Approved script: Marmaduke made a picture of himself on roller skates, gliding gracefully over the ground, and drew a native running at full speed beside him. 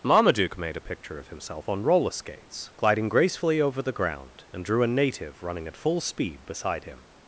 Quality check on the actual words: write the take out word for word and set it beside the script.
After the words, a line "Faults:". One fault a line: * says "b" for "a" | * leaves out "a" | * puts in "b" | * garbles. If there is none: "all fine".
Marmaduke made a picture of himself on roller skates, gliding gracefully over the ground, and drew a native running at full speed beside him.
Faults:
all fine